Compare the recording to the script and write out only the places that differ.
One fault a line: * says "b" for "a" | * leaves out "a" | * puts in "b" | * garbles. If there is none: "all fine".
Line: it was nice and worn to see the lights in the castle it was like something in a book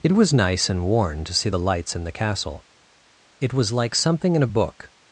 all fine